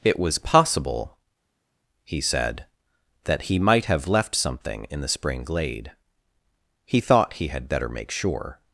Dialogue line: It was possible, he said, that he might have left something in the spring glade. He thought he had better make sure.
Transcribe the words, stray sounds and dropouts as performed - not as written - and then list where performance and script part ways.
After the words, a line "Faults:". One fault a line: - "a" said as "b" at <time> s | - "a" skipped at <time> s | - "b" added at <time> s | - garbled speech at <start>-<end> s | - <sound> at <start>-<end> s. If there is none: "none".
It was possible, he said, that he might have left something in the spring glade. He thought he had better make sure.
Faults:
none